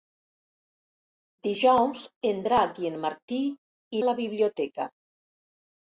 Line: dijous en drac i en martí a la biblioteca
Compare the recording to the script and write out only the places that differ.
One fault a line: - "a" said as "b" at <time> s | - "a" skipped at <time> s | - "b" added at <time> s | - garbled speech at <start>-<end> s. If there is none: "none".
none